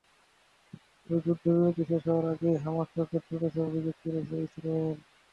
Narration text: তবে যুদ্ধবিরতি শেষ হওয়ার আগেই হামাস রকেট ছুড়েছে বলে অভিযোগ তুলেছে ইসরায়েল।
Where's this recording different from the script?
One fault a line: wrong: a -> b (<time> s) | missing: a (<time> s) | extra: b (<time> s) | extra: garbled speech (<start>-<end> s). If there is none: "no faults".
missing: বলে (3.6 s)